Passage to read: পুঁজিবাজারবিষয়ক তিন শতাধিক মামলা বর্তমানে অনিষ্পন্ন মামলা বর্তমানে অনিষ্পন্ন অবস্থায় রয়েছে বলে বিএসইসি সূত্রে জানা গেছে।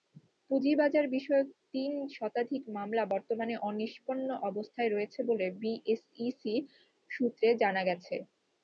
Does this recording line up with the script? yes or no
no